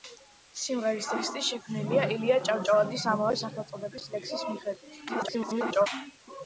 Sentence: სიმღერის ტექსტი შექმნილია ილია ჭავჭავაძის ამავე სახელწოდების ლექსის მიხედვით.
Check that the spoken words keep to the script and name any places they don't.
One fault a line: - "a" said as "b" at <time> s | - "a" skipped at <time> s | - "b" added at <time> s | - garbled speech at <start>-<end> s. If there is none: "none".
- garbled speech at 5.1-5.9 s